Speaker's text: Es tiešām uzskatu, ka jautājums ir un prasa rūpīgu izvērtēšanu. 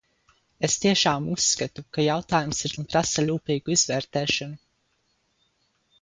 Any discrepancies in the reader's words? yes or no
no